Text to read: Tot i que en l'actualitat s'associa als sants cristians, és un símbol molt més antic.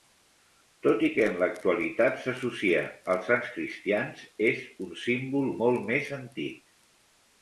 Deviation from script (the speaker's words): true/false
false